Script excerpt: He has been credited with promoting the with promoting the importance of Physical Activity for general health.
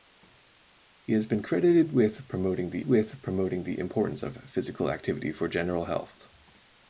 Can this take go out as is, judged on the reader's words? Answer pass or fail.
pass